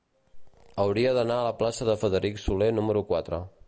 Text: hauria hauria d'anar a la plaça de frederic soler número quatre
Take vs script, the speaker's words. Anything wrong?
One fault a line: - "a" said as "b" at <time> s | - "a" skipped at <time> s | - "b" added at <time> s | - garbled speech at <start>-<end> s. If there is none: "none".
- "hauria" skipped at 1.1 s